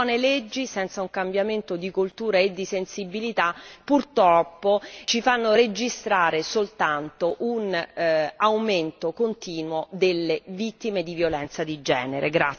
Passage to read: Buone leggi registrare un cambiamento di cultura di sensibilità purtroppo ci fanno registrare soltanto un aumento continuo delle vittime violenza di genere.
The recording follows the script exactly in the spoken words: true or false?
false